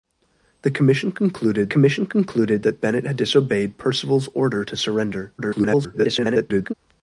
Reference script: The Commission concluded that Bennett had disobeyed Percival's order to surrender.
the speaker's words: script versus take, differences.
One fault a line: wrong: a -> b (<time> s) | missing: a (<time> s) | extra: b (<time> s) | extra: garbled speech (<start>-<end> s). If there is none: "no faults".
extra: Commission concluded (1.7 s)
extra: garbled speech (5.4-6.7 s)